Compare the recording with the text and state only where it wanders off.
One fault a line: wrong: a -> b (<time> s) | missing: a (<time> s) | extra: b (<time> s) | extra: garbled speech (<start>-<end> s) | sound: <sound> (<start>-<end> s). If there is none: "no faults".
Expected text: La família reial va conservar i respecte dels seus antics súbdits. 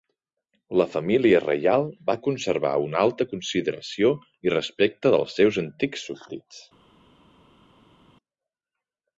extra: una alta consideració (2.9 s)